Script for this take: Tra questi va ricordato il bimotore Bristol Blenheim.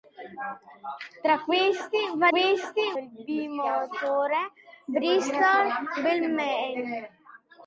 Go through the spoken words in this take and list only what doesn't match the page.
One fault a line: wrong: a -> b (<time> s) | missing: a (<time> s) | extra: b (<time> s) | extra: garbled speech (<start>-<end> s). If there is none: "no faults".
wrong: ricordato -> questi (2.3 s)